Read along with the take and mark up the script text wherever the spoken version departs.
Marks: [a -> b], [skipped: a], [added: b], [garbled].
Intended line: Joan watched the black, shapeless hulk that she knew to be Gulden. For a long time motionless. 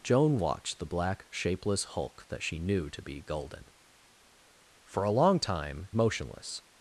Joan watched the black, shapeless hulk that she knew to be Gulden. For a long time motionless.